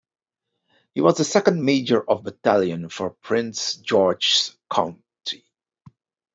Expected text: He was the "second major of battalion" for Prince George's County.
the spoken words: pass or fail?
pass